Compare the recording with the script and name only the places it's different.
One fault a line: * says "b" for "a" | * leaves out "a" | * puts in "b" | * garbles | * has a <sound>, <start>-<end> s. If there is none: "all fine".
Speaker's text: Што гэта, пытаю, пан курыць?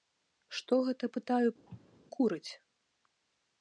* leaves out "пан"
* has a cough, 1.7-2.0 s